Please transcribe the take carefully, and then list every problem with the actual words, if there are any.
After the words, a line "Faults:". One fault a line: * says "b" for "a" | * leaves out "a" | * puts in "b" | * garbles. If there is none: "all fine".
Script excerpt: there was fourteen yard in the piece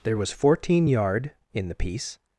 there was fourteen yard in the piece
Faults:
all fine